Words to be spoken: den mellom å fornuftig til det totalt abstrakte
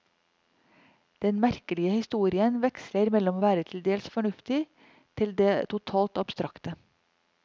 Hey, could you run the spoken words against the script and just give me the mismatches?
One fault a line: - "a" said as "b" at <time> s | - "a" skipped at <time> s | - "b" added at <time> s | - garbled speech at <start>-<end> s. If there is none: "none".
- "merkelige historien veksler" added at 1.4 s
- "være til dels" added at 3.5 s